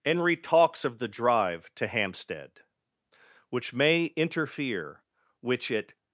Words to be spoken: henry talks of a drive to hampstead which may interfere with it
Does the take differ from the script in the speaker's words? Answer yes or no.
yes